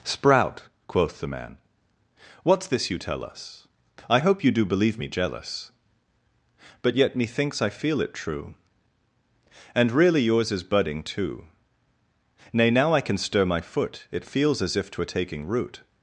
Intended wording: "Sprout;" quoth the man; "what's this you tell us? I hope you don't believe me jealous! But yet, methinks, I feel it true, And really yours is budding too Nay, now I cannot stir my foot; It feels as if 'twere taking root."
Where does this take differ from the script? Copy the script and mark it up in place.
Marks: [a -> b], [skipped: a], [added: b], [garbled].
"Sprout;" quoth the man; "what's this you tell us? I hope you [don't -> do] believe me jealous! But yet, methinks, I feel it true, And really yours is budding too Nay, now I [cannot -> can] stir my foot; It feels as if 'twere taking root."